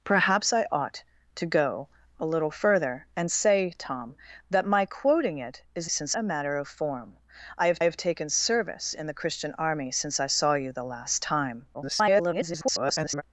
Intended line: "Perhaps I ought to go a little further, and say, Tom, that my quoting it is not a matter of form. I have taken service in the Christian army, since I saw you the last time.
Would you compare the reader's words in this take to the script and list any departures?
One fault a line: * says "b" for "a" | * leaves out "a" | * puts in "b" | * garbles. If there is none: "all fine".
* says "since" for "not"
* puts in "have"
* garbles